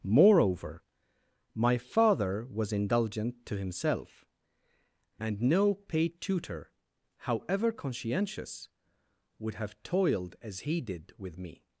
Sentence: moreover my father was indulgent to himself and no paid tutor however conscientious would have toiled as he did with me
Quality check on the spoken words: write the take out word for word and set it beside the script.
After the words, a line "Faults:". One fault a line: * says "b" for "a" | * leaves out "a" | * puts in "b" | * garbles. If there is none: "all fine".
moreover my father was indulgent to himself and no paid tutor however conscientious would have toiled as he did with me
Faults:
all fine